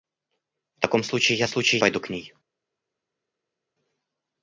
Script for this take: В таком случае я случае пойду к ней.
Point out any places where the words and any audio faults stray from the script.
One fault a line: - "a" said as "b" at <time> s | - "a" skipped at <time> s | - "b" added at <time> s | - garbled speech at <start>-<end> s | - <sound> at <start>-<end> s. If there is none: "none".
none